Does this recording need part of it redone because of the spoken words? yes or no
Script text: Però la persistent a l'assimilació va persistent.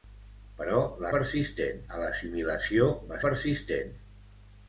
no